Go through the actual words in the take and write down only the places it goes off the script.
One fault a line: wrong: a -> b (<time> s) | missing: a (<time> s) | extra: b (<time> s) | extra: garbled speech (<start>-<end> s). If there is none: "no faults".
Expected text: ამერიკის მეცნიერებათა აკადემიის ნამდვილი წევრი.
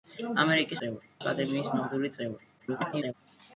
wrong: მეცნიერებათა -> წევრი (0.8 s)
extra: garbled speech (2.6-3.1 s)